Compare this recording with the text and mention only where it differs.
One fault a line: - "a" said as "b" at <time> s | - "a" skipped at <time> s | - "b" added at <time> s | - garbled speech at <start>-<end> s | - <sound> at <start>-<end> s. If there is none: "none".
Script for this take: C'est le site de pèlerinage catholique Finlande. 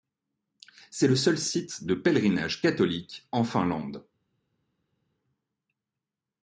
- "seul" added at 1.1 s
- "en" added at 3.3 s